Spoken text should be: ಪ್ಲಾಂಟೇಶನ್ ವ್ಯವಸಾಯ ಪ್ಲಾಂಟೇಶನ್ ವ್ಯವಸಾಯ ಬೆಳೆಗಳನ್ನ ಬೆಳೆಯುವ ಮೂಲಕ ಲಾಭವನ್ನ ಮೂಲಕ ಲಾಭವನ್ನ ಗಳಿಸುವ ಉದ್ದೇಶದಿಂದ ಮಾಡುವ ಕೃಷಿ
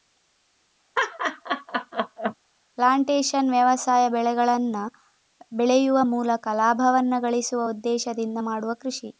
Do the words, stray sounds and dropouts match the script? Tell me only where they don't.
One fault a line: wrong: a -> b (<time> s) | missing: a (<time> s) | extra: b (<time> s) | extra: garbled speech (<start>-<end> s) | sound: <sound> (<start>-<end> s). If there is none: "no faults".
sound: laugh (0.9-2.3 s)
missing: ಪ್ಲಾಂಟೇಶನ್ ವ್ಯವಸಾಯ (4.1 s)
missing: ಮೂಲಕ ಲಾಭವನ್ನ (7.1 s)